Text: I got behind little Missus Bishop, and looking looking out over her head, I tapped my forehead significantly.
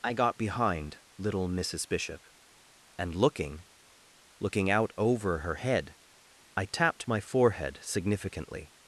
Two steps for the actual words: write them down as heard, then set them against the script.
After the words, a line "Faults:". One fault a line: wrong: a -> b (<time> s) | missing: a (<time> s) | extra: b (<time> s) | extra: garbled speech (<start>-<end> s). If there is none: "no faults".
I got behind little Missus Bishop, and looking looking out over her head, I tapped my forehead significantly.
Faults:
no faults